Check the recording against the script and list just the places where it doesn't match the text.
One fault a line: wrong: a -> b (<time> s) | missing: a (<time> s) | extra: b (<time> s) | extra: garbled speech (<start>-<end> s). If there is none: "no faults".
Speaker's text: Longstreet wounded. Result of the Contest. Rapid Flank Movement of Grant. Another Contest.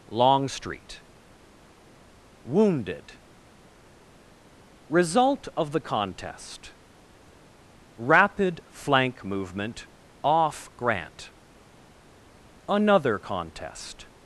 wrong: of -> off (10.2 s)